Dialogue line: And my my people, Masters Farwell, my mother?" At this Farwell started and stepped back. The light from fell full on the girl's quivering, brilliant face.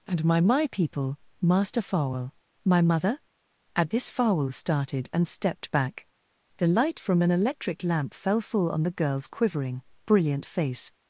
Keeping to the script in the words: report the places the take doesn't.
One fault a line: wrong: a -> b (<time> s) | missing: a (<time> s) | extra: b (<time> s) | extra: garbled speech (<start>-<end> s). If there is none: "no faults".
wrong: Masters -> Master (1.4 s)
extra: an electric lamp (7.2 s)